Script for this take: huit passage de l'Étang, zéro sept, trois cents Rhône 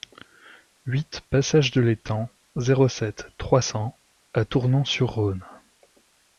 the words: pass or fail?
fail